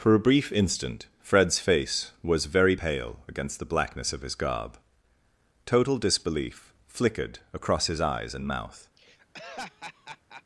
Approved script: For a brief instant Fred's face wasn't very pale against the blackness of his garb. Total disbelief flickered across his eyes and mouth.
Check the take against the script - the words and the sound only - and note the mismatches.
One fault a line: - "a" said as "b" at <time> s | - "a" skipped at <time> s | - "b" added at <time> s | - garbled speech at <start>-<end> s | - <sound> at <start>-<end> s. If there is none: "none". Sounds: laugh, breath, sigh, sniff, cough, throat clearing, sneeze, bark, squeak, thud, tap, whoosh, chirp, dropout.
- "wasn't" said as "was" at 2.2 s
- laugh at 9.0-10.4 s